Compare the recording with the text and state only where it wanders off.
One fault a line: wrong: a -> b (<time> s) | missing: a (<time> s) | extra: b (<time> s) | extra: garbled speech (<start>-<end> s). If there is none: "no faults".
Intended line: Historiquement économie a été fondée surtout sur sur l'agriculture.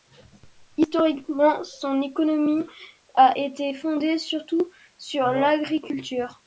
extra: son (1.6 s)
missing: sur (5.3 s)